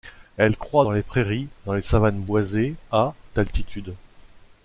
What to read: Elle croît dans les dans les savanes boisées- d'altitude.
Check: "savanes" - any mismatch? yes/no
no